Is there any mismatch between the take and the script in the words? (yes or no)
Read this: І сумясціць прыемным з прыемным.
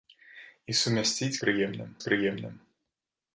no